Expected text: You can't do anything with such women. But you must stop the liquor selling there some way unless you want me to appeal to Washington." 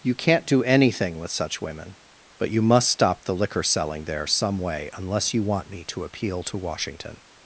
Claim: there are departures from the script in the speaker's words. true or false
false